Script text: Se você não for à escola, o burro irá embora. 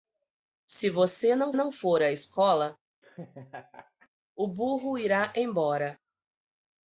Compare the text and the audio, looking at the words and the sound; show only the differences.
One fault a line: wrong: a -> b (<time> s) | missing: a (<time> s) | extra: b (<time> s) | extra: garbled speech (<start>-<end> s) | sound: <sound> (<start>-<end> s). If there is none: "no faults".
extra: não (1.5 s)
sound: laugh (3.0-4.1 s)